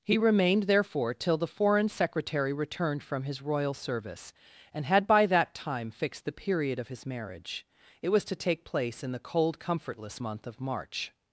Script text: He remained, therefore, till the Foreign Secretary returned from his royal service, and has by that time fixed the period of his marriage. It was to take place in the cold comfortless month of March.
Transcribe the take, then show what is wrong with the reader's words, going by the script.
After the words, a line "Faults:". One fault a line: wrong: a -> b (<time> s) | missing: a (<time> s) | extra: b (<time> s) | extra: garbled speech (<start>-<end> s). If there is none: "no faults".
He remained, therefore, till the Foreign Secretary returned from his royal service, and had by that time fixed the period of his marriage. It was to take place in the cold comfortless month of March.
Faults:
wrong: has -> had (4.8 s)